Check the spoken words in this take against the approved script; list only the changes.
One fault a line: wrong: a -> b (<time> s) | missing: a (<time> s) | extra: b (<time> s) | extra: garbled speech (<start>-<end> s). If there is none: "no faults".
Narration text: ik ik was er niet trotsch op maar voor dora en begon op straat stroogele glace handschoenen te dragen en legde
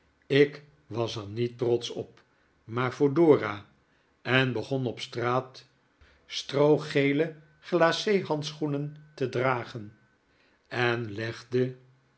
missing: ik (0.6 s)